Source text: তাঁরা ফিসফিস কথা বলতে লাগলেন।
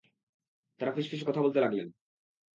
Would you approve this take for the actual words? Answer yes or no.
yes